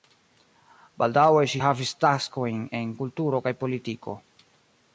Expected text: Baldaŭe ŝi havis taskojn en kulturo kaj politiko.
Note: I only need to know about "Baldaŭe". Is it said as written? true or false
true